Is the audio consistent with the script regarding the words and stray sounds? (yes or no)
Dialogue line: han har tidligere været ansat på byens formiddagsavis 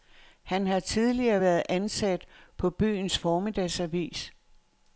yes